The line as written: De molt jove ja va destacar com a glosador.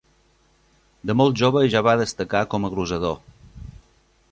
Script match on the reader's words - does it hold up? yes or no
yes